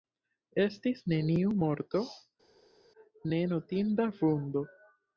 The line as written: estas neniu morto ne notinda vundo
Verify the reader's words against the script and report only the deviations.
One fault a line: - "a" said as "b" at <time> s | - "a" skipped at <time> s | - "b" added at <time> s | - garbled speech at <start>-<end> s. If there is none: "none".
- "estas" said as "estis" at 0.6 s